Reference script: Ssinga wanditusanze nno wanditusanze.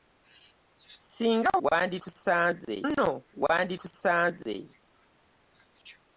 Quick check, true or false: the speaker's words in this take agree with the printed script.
true